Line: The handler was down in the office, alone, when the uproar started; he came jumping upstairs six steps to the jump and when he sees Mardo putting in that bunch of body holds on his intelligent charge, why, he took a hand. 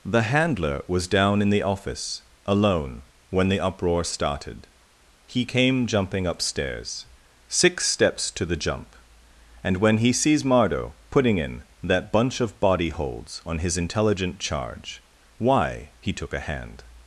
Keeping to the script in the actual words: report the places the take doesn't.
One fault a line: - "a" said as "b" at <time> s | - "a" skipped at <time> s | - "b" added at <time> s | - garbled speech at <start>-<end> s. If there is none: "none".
none